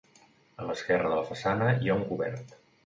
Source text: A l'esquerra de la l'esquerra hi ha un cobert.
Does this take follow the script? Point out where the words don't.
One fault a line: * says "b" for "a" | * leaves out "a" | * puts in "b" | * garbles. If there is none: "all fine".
* says "façana" for "l'esquerra"